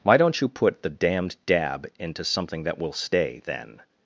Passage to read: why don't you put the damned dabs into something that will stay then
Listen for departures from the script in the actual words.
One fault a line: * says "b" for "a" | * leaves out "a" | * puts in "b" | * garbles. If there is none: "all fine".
* says "dab" for "dabs"